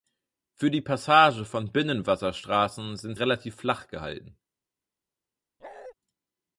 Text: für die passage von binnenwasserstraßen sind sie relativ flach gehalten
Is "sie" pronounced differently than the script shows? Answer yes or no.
yes